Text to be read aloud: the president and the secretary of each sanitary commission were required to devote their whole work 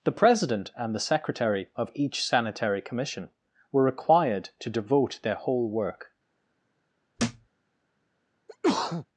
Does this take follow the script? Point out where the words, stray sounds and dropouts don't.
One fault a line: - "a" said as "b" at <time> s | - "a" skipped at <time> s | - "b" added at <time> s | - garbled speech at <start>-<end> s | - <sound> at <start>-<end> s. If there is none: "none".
- thud at 7.2-7.5 s
- sneeze at 8.5-9.1 s